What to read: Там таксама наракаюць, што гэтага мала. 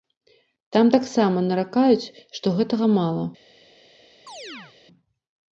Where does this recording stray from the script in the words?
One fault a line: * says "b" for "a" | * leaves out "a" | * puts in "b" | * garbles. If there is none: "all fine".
all fine